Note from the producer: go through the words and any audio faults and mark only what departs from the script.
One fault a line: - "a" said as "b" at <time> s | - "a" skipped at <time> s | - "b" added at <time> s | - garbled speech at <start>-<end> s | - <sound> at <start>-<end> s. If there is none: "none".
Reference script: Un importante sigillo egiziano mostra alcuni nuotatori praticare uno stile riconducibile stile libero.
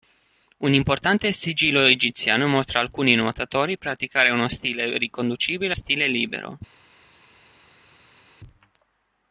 none